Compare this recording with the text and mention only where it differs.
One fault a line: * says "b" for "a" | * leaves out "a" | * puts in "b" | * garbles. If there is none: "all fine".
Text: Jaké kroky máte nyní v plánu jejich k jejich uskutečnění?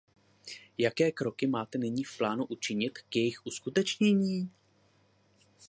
* says "učinit" for "jejich"